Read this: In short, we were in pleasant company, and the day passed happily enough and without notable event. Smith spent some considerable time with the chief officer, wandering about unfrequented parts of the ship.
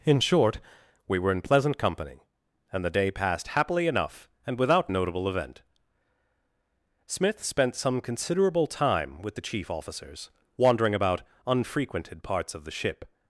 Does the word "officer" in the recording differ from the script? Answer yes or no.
yes